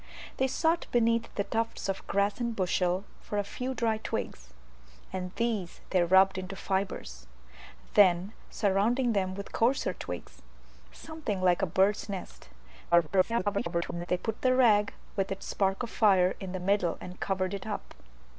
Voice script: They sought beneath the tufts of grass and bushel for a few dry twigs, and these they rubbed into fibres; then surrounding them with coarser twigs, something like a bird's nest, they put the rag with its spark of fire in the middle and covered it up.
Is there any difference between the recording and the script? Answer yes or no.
yes